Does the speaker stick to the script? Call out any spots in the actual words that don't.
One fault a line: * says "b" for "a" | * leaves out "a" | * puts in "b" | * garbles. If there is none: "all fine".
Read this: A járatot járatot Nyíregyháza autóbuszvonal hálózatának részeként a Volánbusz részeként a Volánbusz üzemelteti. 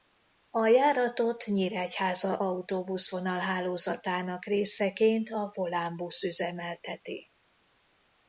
* leaves out "járatot"
* leaves out "részeként a Volánbusz"